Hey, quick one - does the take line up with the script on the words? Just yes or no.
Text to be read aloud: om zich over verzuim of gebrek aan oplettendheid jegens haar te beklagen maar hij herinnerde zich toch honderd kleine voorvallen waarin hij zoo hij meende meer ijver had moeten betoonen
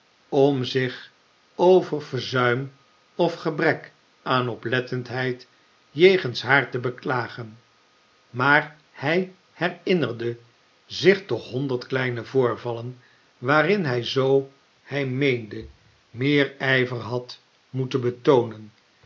yes